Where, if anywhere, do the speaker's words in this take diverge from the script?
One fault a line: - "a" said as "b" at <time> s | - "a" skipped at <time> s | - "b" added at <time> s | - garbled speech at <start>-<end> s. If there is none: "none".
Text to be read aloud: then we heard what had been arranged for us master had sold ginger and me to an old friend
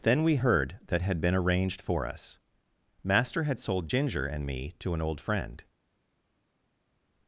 - "what" said as "that" at 0.9 s